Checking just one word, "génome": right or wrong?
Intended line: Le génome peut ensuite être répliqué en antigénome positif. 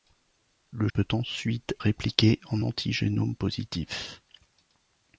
wrong